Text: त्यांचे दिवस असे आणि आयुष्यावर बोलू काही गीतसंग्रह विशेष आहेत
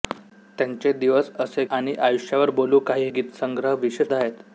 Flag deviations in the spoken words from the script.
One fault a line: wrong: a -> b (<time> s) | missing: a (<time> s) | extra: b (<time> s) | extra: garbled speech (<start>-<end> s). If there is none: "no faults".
no faults